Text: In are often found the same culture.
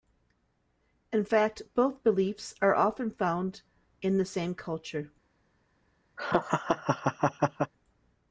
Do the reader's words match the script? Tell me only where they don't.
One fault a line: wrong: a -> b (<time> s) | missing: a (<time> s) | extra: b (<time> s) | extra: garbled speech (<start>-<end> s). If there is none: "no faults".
extra: fact both beliefs (1.2 s)
extra: in (4.0 s)